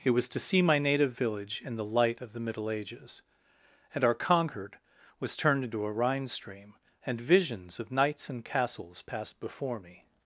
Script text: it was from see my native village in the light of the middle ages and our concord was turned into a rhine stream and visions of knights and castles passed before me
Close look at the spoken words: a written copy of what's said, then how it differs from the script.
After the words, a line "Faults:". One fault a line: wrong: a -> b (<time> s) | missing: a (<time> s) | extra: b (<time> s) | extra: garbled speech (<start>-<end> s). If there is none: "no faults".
it was to see my native village in the light of the middle ages and our concord was turned into a rhine stream and visions of knights and castles passed before me
Faults:
wrong: from -> to (0.3 s)